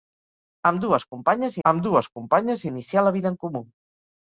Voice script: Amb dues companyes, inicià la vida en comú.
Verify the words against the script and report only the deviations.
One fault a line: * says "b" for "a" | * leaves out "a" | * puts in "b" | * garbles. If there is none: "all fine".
* puts in "amb dues companyes"